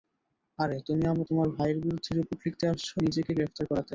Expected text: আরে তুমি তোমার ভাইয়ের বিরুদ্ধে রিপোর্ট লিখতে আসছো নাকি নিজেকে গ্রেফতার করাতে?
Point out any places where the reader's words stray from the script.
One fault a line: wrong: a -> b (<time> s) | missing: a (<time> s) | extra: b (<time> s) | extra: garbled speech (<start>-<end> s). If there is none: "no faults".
missing: নাকি (2.9 s)